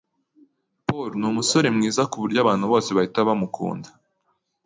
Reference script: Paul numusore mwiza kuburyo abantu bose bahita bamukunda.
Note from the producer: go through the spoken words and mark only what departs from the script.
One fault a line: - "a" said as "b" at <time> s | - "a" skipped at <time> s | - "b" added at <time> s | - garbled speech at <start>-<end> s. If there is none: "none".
none